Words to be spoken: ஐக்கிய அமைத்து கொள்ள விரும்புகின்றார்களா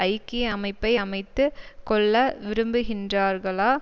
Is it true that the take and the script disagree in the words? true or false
true